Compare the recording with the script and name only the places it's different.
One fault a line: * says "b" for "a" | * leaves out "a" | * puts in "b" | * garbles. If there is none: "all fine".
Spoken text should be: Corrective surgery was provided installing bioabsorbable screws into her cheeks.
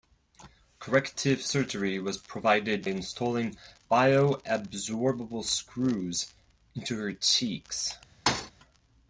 all fine